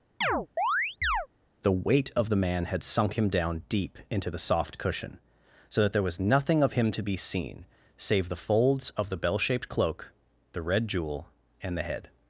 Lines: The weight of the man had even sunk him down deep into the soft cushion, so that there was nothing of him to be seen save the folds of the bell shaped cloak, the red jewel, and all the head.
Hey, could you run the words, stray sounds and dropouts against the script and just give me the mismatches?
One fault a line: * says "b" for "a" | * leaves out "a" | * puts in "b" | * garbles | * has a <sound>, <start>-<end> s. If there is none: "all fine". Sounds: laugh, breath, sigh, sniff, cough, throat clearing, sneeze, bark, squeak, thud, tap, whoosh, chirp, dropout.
* has a chirp, 0.2-1.3 s
* leaves out "even"
* leaves out "all"